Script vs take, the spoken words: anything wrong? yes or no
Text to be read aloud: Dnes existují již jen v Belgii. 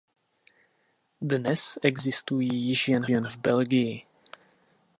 yes